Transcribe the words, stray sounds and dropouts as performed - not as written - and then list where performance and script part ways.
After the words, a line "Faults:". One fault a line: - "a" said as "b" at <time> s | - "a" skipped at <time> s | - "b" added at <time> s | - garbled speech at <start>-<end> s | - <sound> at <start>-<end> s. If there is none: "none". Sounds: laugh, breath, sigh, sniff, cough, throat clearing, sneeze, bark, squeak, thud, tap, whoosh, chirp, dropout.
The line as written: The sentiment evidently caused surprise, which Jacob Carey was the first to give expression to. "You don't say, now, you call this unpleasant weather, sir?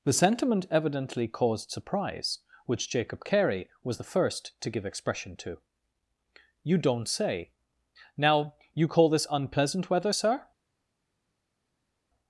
The sentiment evidently caused surprise, which Jacob Carey was the first to give expression to. "You don't say, now, you call this unpleasant weather, sir?
Faults:
none